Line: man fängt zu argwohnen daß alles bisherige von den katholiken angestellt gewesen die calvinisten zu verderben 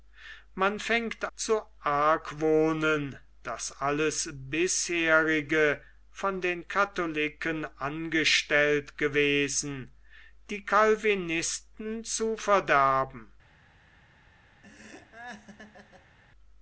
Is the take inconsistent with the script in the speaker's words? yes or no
no